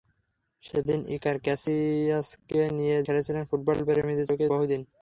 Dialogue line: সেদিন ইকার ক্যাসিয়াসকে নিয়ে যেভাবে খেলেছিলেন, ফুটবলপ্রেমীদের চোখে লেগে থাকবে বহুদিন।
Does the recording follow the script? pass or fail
fail